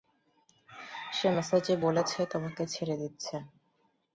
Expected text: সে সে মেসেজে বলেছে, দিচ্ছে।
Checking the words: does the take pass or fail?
fail